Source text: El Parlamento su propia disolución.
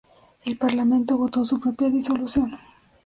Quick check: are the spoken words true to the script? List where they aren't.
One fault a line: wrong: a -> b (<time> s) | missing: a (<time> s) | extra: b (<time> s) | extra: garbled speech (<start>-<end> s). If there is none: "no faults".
extra: votó (1.1 s)